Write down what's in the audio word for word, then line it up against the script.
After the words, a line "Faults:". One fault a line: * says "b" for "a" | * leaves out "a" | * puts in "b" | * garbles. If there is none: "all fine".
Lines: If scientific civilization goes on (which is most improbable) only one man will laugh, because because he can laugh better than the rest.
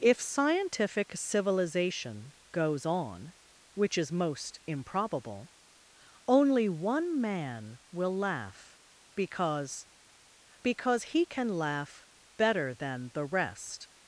If scientific civilization goes on (which is most improbable) only one man will laugh, because because he can laugh better than the rest.
Faults:
all fine